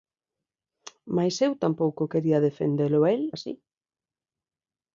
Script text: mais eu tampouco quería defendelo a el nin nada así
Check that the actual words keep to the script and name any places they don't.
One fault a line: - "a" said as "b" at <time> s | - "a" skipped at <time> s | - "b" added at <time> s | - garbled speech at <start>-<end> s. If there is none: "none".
- "nin nada" skipped at 3.2 s